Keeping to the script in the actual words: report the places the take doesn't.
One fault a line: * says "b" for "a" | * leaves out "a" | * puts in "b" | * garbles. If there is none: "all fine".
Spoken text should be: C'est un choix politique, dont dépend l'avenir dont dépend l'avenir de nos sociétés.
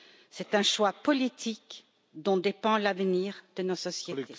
* leaves out "dont dépend l'avenir"